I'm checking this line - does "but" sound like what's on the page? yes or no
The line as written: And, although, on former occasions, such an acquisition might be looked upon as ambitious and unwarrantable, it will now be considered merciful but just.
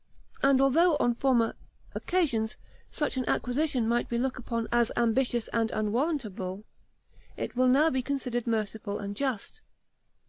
no